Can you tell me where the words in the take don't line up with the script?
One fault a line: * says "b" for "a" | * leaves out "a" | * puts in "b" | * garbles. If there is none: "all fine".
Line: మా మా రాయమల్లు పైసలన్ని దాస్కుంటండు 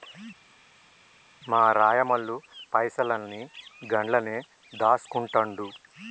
* leaves out "మా"
* puts in "గండ్లనే"